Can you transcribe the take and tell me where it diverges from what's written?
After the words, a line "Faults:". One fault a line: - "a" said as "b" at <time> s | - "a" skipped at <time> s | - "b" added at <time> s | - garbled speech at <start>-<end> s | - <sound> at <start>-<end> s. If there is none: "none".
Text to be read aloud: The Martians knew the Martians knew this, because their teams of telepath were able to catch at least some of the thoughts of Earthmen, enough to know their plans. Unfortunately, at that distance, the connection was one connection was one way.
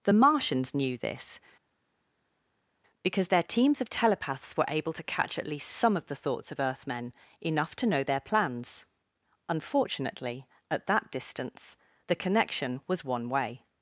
The Martians knew this, because their teams of telepaths were able to catch at least some of the thoughts of Earthmen, enough to know their plans. Unfortunately, at that distance, the connection was one way.
Faults:
- "the Martians knew" skipped at 1.0 s
- "telepath" said as "telepaths" at 3.9 s
- "connection was one" skipped at 13.3 s